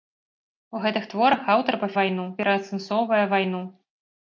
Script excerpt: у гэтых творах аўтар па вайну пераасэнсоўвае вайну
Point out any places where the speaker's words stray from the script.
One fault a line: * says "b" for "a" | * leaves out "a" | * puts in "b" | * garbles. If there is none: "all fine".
all fine